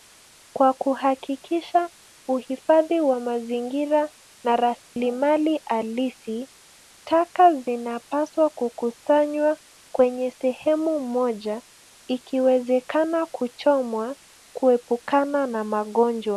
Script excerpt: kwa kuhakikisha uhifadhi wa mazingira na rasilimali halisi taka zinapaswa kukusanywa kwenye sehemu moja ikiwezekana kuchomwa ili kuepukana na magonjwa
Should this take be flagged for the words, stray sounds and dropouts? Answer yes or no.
yes